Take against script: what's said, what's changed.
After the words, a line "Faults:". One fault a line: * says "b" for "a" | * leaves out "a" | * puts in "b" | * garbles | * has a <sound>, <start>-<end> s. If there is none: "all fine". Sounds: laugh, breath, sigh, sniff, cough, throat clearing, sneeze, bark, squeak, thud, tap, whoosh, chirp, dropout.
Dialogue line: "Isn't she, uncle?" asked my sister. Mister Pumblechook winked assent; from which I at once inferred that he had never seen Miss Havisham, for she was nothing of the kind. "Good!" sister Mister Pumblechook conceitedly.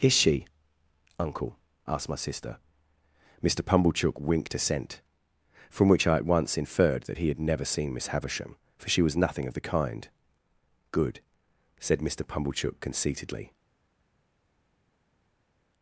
"Is she, uncle?" asked my sister. Mister Pumblechook winked assent; from which I at once inferred that he had never seen Miss Havisham, for she was nothing of the kind. "Good!" said Mister Pumblechook conceitedly.
Faults:
* says "Is" for "Isn't"
* says "said" for "sister"